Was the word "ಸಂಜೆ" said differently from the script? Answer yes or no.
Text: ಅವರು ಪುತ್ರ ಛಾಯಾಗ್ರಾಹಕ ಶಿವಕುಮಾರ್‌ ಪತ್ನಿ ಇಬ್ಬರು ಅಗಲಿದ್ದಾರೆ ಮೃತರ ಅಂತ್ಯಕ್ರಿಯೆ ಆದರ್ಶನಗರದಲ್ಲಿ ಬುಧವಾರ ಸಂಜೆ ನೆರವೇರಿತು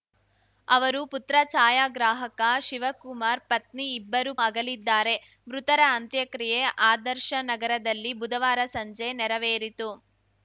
no